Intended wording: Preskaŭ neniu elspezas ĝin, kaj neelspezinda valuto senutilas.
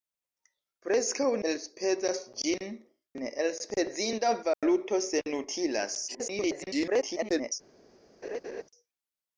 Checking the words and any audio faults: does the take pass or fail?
fail